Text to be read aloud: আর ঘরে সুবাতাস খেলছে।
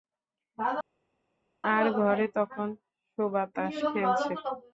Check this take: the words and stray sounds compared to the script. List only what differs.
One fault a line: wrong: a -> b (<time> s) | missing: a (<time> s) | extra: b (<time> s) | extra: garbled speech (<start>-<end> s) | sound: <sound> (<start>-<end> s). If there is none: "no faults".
extra: তখন (2.4 s)